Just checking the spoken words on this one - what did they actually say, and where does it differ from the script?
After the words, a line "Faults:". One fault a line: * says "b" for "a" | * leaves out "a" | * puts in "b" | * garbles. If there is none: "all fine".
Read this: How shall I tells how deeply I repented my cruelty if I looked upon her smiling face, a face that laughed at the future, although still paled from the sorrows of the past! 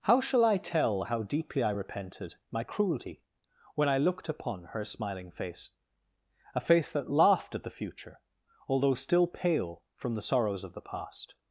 How shall I tell how deeply I repented my cruelty when I looked upon her smiling face, a face that laughed at the future, although still pale from the sorrows of the past!
Faults:
* says "tell" for "tells"
* says "when" for "if"
* says "pale" for "paled"